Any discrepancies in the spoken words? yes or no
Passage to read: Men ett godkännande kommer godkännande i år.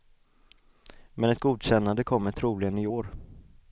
yes